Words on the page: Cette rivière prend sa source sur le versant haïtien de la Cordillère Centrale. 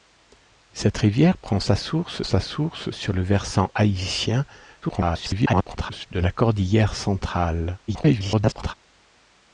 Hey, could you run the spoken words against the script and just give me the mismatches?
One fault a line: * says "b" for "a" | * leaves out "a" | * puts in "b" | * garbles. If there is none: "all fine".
* puts in "sa source"
* garbles
* garbles